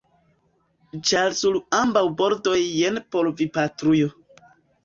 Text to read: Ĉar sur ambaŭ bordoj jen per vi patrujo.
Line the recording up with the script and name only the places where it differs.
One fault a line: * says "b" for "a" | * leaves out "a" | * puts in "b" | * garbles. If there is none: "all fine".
* says "por" for "per"